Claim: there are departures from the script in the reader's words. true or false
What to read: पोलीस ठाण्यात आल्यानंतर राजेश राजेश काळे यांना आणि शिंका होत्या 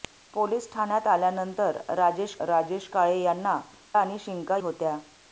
false